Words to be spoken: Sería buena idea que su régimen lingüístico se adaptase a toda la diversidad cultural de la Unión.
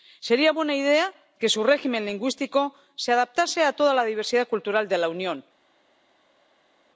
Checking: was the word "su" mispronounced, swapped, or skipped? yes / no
no